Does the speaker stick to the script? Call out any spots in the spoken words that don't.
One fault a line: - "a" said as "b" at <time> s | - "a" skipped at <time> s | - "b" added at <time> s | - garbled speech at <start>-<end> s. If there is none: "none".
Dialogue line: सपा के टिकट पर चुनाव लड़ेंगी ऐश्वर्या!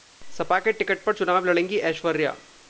none